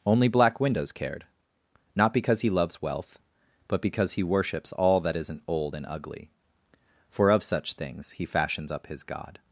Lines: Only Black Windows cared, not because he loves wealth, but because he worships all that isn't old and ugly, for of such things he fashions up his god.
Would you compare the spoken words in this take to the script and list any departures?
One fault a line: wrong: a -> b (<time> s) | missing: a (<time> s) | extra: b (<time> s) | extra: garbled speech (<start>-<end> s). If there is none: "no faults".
no faults